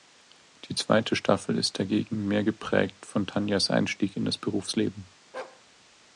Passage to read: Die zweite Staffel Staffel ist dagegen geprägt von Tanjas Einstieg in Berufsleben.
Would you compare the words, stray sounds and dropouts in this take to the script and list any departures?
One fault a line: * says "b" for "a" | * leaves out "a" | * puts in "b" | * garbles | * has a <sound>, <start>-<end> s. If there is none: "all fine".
* leaves out "Staffel"
* puts in "mehr"
* puts in "das"
* has a bark, 5.3-5.6 s